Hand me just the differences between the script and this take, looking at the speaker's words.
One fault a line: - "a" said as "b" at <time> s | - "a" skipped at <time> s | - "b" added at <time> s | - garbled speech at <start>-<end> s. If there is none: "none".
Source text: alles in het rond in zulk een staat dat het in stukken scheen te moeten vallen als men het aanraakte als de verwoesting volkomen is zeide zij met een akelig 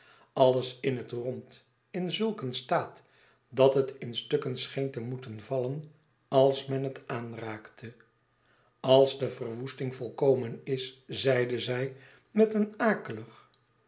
none